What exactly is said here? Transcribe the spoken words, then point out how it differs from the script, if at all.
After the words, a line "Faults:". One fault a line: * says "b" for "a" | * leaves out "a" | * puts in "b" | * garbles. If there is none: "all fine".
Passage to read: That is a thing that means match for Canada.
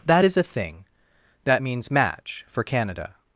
That is a thing that means match for Canada.
Faults:
all fine